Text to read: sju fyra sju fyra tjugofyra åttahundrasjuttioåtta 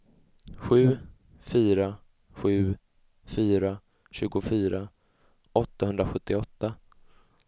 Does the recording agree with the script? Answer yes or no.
yes